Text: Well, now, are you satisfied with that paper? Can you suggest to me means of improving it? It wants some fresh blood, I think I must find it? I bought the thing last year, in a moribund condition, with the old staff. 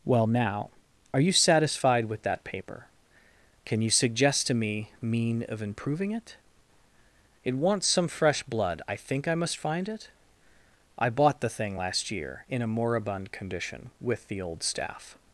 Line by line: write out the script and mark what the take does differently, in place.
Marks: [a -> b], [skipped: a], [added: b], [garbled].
Well, now, are you satisfied with that paper? Can you suggest to me [means -> mean] of improving it? It wants some fresh blood, I think I must find it? I bought the thing last year, in a moribund condition, with the old staff.